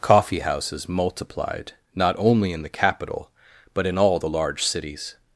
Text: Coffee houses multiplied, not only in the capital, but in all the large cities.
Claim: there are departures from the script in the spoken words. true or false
false